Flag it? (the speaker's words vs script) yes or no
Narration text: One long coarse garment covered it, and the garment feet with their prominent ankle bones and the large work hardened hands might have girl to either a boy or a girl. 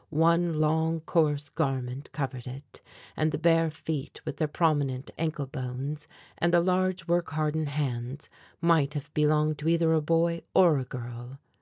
yes